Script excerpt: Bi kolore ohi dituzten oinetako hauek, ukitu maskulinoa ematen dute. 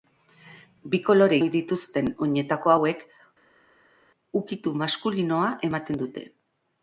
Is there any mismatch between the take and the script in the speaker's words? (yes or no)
no